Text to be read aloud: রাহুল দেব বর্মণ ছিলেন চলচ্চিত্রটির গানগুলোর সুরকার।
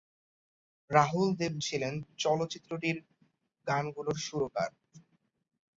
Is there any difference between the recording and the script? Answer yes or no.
yes